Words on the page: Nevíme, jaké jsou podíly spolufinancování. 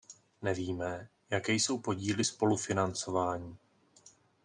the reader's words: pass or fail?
pass